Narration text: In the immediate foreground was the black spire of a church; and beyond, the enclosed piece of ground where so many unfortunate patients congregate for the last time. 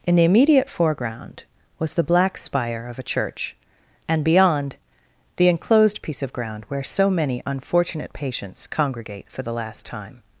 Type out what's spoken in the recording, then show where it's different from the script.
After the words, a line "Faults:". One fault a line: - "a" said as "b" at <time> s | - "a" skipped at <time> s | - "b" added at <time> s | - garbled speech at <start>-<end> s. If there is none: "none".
In the immediate foreground was the black spire of a church; and beyond, the enclosed piece of ground where so many unfortunate patients congregate for the last time.
Faults:
none